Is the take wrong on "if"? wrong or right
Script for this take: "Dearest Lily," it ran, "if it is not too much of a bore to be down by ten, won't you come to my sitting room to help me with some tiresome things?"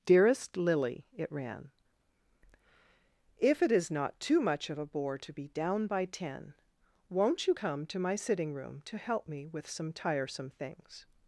right